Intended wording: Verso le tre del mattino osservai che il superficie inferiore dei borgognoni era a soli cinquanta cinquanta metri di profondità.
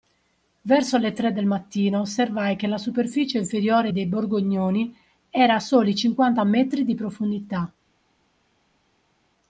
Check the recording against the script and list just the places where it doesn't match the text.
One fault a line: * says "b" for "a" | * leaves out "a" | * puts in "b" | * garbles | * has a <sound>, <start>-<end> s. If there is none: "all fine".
* says "la" for "il"
* leaves out "cinquanta"